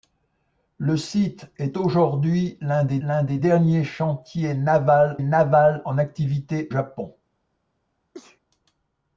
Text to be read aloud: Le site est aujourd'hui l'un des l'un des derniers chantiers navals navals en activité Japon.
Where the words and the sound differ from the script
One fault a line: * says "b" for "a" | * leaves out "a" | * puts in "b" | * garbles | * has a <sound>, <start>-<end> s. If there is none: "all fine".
* has a sneeze, 8.1-8.4 s